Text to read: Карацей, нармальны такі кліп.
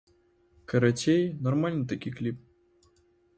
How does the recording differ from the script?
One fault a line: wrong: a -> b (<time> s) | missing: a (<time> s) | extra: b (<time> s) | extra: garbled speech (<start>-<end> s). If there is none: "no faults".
no faults